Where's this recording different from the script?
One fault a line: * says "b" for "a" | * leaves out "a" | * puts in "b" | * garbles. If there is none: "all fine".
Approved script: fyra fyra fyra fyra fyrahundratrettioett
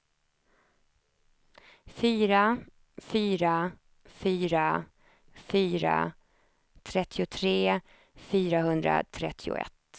* puts in "trettiotre"